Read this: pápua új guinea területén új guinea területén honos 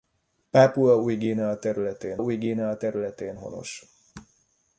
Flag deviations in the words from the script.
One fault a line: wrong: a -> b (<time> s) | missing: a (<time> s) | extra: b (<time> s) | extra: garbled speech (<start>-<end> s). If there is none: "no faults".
no faults